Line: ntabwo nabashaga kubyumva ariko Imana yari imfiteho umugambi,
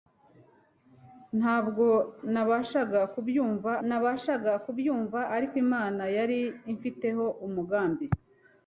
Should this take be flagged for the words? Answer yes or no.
yes